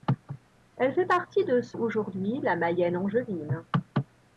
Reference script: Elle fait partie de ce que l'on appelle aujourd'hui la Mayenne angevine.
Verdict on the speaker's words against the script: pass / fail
fail